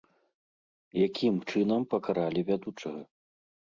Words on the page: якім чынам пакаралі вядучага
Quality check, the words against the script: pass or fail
pass